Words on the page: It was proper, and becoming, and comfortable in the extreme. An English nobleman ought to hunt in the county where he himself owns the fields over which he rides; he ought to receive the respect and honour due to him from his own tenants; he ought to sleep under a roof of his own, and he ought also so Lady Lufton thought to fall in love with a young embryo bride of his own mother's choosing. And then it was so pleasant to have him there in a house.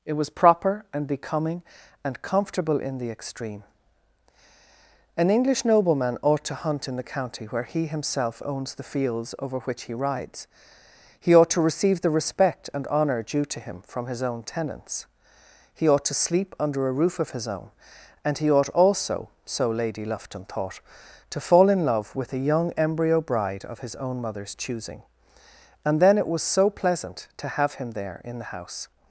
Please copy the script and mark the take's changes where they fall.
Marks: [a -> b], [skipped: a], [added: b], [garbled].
It was proper, and becoming, and comfortable in the extreme. An English nobleman ought to hunt in the county where he himself owns the fields over which he rides; he ought to receive the respect and honour due to him from his own tenants; he ought to sleep under a roof of his own, and he ought also so Lady Lufton thought to fall in love with a young embryo bride of his own mother's choosing. And then it was so pleasant to have him there in [a -> the] house.